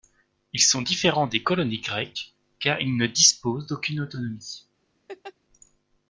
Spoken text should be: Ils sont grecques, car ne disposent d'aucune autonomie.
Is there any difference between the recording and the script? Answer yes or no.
yes